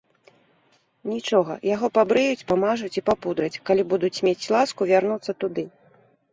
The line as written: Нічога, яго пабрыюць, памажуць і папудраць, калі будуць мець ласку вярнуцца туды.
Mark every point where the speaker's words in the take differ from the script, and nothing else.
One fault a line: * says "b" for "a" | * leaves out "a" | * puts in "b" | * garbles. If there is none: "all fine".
all fine